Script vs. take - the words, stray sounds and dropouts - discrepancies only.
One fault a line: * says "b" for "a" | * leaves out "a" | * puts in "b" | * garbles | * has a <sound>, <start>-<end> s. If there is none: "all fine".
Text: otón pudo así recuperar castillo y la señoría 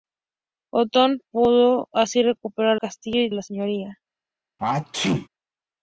* has a sneeze, 4.6-5.3 s